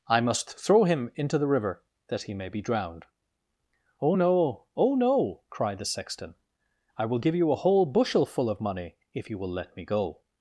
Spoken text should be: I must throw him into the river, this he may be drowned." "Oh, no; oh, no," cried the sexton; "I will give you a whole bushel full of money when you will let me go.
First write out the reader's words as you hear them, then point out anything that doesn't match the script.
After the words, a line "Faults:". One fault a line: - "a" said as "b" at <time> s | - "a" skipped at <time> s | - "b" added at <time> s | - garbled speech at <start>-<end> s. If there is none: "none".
I must throw him into the river, that he may be drowned." "Oh, no; oh, no," cried the sexton; "I will give you a whole bushel full of money if you will let me go.
Faults:
- "this" said as "that" at 2.1 s
- "when" said as "if" at 9.1 s